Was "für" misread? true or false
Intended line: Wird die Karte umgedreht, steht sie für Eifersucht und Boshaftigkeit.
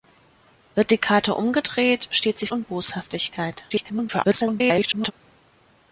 true